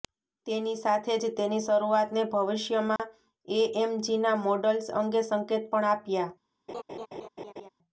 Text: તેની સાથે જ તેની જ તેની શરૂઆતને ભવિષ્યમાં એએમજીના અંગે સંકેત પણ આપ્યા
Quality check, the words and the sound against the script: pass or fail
fail